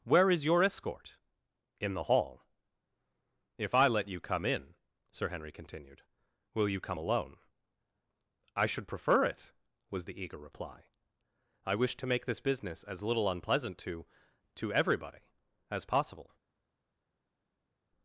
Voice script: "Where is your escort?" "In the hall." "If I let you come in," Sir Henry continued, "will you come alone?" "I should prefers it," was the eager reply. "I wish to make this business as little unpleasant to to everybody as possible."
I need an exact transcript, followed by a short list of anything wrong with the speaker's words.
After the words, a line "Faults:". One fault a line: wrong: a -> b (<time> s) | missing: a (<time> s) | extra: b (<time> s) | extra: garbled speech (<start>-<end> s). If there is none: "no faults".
"Where is your escort?" "In the hall." "If I let you come in," Sir Henry continued, "will you come alone?" "I should prefer it," was the eager reply. "I wish to make this business as little unpleasant to to everybody as possible."
Faults:
wrong: prefers -> prefer (8.9 s)